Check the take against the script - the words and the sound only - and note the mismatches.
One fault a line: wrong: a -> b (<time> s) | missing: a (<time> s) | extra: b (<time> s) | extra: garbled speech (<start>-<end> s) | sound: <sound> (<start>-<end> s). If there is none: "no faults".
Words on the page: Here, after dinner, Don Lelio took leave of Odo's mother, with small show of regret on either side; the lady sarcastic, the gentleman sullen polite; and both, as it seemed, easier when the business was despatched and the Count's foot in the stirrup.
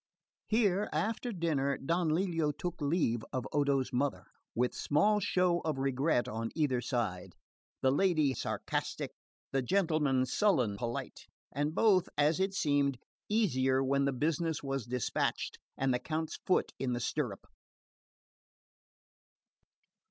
no faults